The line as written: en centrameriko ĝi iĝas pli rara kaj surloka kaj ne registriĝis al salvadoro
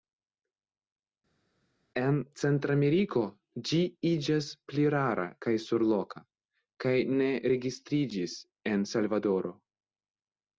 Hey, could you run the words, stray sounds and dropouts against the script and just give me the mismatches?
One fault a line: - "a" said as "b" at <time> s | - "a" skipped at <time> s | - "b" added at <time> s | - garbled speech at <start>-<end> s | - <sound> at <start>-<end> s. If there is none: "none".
- "al" said as "en" at 8.8 s